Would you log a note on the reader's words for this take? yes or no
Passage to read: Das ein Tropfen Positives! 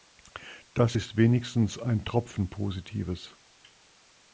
yes